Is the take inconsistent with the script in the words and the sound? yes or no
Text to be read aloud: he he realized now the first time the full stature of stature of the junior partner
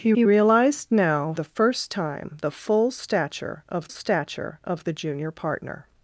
no